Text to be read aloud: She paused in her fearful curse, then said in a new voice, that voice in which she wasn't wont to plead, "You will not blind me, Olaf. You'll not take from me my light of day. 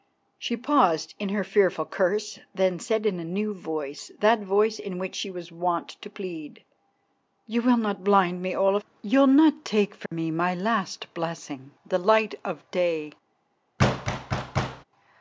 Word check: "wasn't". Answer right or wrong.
wrong